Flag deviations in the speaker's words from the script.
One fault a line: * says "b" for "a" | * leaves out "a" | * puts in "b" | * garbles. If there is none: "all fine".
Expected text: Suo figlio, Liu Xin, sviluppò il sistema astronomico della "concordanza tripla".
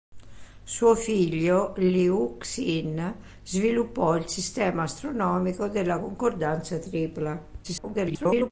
* garbles